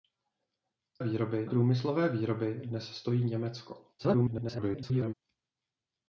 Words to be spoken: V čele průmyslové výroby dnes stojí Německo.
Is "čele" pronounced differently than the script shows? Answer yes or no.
yes